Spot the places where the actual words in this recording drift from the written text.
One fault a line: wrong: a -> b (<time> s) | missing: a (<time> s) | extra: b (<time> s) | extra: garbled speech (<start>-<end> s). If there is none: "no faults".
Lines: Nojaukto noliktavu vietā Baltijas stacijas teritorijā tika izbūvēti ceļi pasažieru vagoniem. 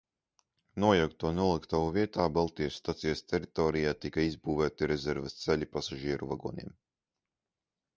extra: rezerves (5.0 s)